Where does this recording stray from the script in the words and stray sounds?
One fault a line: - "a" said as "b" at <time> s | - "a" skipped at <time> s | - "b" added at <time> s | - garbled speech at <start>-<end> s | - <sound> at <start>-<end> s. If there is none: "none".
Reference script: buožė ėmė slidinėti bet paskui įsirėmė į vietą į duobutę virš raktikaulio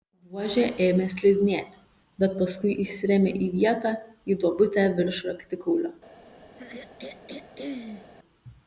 - throat clearing at 6.6-8.1 s